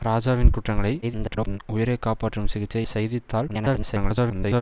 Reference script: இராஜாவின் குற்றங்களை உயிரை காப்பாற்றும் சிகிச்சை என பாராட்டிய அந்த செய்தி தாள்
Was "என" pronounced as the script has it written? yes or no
no